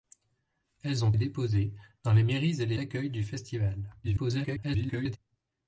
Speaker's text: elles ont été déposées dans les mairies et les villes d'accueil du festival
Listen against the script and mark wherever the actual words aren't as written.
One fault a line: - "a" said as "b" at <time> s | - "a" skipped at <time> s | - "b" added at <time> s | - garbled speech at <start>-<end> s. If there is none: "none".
- "été" skipped at 1.1 s
- "villes" skipped at 2.8 s
- garbled speech at 4.0-5.2 s